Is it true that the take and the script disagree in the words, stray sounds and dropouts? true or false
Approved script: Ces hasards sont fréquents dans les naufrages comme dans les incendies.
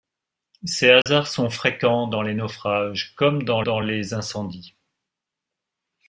true